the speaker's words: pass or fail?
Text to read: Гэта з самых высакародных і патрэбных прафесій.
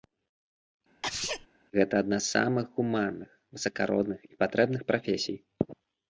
fail